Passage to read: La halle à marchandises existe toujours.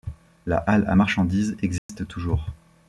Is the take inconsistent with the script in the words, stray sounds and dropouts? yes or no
yes